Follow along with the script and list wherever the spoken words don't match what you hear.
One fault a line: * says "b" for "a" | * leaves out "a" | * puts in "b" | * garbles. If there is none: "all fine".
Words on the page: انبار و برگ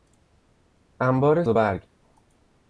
all fine